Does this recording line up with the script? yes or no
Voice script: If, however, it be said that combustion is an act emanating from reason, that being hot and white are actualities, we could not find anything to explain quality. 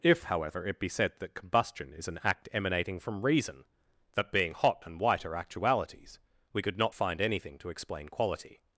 yes